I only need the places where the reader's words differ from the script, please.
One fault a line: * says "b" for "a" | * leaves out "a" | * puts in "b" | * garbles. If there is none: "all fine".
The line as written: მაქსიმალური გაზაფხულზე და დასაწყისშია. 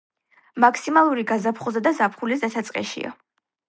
* puts in "ზაფხულის"